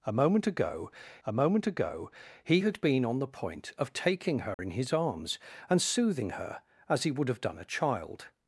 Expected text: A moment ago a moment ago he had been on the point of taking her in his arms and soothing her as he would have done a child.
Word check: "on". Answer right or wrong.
right